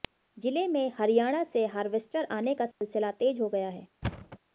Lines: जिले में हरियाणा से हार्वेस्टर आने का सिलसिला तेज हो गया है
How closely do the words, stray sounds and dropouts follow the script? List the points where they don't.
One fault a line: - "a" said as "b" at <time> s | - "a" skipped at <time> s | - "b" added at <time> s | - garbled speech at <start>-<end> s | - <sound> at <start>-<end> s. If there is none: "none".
- dropout at 2.7-2.8 s
- thud at 4.0-4.4 s